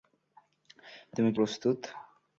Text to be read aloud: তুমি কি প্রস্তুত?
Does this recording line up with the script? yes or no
yes